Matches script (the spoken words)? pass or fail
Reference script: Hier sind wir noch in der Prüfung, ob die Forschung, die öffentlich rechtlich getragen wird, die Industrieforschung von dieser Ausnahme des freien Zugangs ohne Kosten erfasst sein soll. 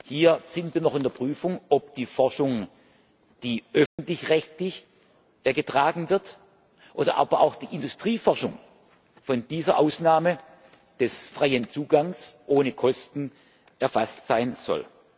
fail